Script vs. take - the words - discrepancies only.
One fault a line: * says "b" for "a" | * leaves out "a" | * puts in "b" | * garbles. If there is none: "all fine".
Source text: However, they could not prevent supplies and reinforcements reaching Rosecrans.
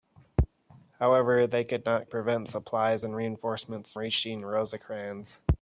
all fine